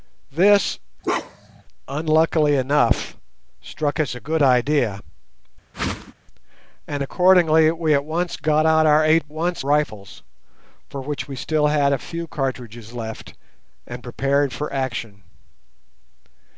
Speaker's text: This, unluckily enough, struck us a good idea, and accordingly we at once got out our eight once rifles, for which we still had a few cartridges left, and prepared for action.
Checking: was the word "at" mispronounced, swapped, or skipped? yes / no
no